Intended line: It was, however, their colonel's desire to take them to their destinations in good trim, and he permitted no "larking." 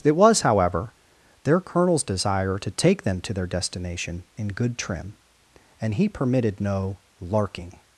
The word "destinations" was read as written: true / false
false